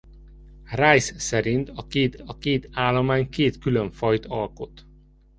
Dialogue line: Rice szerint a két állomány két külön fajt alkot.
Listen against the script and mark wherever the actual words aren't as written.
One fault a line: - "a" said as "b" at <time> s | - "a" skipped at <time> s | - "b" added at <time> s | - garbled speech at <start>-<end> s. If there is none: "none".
- "a két" added at 2.2 s